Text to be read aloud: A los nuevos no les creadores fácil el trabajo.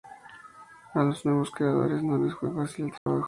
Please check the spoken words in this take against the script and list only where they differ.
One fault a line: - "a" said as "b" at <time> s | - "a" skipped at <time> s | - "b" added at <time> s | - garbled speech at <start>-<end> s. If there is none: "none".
- "creadores" added at 1.5 s
- "creadores" said as "fue" at 2.3 s